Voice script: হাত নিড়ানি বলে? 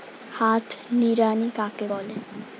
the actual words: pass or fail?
fail